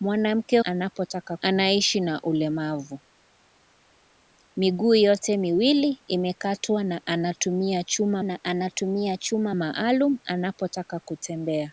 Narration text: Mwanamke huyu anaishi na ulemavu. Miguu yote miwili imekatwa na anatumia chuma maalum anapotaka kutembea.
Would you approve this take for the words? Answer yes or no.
no